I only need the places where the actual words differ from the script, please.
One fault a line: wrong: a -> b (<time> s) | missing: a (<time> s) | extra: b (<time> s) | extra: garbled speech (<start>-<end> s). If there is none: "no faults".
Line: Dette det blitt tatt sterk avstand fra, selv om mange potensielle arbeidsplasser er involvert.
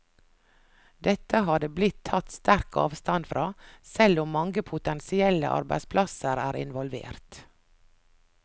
extra: har (1.5 s)